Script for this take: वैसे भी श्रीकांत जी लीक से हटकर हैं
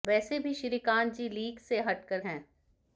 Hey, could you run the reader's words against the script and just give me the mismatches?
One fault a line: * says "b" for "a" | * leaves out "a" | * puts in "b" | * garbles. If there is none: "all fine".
all fine